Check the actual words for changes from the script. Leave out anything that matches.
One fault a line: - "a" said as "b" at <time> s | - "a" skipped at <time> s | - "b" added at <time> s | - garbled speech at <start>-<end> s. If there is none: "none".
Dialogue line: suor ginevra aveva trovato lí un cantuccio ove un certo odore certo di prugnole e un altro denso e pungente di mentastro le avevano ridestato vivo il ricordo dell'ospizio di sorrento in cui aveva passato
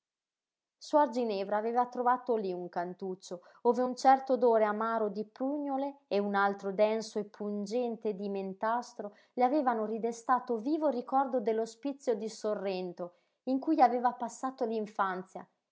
- "certo" said as "amaro" at 4.6 s